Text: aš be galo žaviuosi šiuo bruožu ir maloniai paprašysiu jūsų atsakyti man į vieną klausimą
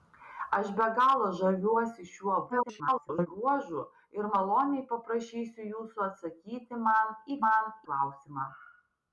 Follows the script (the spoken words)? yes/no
no